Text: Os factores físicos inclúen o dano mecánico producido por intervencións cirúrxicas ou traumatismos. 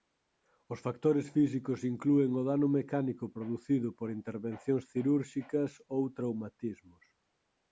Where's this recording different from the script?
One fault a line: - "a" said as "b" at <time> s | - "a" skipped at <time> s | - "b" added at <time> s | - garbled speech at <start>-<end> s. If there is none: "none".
none